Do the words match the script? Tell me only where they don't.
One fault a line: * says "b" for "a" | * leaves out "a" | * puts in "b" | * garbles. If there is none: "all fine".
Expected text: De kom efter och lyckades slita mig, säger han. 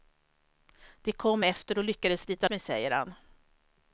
all fine